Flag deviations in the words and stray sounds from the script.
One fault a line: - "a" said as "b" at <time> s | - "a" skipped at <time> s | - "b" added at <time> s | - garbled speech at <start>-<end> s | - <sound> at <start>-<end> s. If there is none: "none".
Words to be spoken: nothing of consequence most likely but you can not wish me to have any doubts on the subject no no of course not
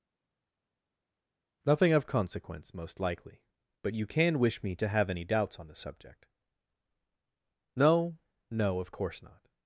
- "not" skipped at 4.4 s